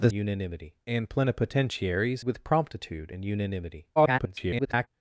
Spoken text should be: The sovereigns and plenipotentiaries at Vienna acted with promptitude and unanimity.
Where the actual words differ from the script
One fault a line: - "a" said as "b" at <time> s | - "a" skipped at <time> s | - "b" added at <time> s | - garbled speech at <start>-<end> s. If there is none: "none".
- "sovereigns" said as "unanimity" at 0.1 s
- "at Vienna acted" skipped at 2.2 s
- garbled speech at 4.0-4.9 s